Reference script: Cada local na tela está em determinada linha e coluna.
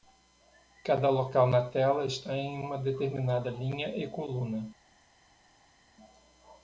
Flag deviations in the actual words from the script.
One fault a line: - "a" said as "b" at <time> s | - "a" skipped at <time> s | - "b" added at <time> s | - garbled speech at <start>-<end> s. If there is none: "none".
- "uma" added at 2.6 s